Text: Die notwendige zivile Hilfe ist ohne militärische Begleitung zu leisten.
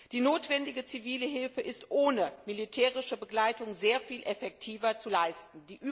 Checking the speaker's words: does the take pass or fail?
fail